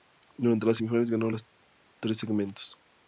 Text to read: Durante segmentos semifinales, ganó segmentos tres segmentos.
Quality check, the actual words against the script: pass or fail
fail